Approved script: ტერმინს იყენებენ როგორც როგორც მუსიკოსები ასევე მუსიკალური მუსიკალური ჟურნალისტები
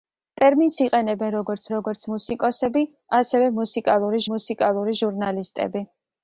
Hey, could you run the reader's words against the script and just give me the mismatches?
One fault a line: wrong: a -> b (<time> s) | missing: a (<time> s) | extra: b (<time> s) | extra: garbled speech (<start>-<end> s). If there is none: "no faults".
no faults